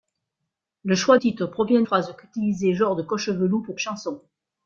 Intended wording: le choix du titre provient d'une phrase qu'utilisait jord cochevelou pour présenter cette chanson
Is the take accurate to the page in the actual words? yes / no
no